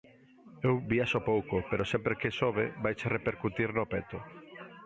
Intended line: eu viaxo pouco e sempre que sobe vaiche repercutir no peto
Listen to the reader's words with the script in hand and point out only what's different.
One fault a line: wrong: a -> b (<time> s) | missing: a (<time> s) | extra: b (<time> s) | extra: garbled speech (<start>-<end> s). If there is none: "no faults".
wrong: e -> pero (1.7 s)